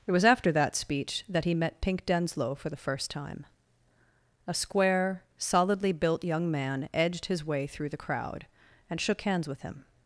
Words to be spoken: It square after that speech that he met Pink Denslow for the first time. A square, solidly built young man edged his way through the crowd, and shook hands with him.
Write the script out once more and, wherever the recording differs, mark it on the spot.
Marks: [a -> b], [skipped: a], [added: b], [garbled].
It [square -> was] after that speech that he met Pink Denslow for the first time. A square, solidly built young man edged his way through the crowd, and shook hands with him.